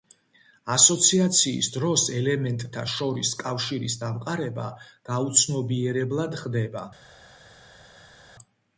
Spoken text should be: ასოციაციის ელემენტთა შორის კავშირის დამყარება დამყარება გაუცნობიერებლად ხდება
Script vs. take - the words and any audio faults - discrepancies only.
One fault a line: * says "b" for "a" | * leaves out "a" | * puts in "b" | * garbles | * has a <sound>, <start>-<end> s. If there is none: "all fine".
* puts in "დროს"
* leaves out "დამყარება"